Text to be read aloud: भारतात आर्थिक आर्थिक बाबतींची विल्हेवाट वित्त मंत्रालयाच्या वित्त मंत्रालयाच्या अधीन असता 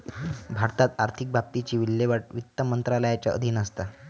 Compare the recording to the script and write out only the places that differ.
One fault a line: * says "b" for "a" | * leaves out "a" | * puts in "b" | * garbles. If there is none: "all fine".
* leaves out "आर्थिक"
* leaves out "वित्त मंत्रालयाच्या"